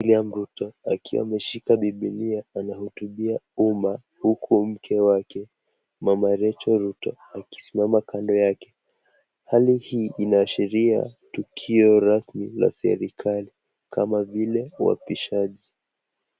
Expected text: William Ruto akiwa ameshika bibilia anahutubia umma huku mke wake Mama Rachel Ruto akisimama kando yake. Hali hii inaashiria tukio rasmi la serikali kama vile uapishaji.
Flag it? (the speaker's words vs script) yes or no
no